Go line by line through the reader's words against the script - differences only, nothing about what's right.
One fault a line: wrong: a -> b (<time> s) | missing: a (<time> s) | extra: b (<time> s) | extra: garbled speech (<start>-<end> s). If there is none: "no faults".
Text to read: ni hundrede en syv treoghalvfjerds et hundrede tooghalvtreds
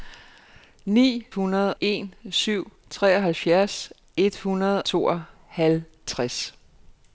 no faults